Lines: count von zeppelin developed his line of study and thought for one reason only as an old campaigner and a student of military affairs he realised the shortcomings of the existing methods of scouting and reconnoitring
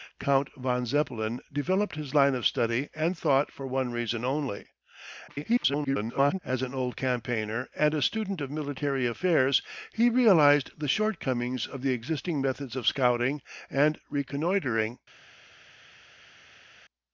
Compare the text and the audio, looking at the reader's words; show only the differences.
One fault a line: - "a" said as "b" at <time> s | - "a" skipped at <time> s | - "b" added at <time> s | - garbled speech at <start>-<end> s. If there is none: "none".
- garbled speech at 5.3-6.4 s